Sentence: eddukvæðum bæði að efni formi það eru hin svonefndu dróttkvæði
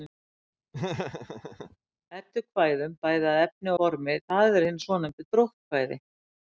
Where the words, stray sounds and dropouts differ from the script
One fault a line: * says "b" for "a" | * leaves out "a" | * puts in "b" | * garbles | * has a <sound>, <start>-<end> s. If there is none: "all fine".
* has a laugh, 0.7-1.8 s